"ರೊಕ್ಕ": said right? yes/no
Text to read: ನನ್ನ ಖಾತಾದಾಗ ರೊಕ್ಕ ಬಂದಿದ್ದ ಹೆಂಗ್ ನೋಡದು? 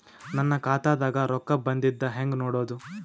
yes